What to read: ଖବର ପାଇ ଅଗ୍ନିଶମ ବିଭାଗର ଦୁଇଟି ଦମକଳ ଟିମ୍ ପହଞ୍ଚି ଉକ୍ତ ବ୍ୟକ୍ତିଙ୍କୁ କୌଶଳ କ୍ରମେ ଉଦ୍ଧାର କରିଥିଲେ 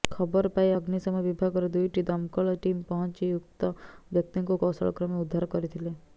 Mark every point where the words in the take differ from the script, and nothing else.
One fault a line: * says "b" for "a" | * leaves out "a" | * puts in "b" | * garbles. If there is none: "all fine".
all fine